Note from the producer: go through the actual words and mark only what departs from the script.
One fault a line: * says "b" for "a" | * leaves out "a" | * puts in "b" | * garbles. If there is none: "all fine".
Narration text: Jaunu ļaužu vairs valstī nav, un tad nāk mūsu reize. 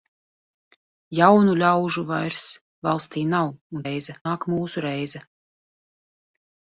* says "reize" for "tad"